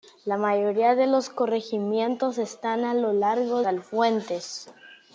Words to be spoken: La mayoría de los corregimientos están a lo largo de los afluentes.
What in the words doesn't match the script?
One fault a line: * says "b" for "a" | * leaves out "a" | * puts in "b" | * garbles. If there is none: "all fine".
* leaves out "de los"